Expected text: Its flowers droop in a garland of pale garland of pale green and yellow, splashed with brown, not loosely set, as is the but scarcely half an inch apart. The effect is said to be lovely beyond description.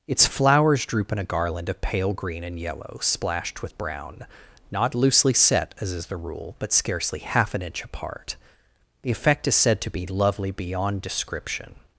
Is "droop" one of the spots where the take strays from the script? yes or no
no